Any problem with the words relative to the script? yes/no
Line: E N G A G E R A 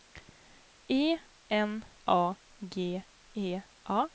yes